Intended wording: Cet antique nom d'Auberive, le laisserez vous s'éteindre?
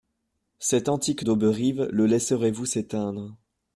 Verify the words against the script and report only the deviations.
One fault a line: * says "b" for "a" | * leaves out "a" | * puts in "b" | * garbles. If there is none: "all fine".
* leaves out "nom"